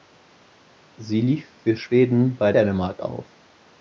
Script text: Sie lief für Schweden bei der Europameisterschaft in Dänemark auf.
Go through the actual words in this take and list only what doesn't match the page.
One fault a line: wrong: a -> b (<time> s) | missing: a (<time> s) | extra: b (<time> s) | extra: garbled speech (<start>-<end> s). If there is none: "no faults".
missing: der Europameisterschaft in (2.5 s)